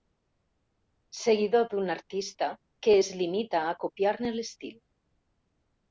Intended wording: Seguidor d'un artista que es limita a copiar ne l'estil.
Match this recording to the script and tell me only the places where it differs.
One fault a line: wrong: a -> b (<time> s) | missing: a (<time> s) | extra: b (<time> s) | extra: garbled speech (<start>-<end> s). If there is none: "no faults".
no faults